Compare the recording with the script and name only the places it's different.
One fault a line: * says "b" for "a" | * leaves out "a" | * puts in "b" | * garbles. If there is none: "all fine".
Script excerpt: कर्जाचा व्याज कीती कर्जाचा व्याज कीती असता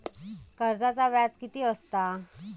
* leaves out "कर्जाचा व्याज कीती"